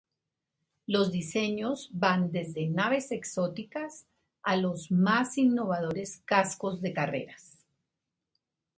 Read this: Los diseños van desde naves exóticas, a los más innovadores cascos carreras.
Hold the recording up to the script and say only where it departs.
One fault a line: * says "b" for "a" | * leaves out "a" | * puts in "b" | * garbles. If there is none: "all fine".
* puts in "de"